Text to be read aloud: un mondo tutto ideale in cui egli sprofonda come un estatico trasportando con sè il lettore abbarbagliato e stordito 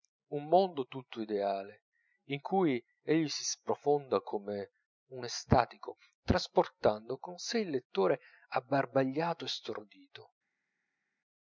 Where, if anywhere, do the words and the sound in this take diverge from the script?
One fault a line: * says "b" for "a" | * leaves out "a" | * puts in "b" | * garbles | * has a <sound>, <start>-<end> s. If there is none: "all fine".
* puts in "si"